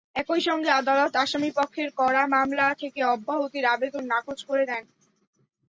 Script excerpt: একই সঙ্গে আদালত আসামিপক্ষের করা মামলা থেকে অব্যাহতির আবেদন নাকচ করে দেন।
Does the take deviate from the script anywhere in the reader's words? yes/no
no